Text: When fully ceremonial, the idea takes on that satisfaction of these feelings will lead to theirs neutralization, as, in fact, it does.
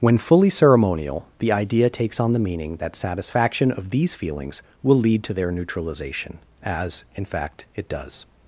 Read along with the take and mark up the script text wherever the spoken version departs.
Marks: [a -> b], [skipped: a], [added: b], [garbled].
When fully ceremonial, the idea takes on [added: the meaning] that satisfaction of these feelings will lead to [theirs -> their] neutralization, as, in fact, it does.